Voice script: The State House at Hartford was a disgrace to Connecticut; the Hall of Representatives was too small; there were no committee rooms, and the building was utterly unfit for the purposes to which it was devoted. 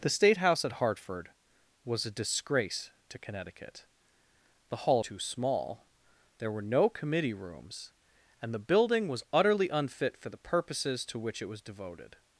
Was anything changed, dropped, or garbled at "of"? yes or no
yes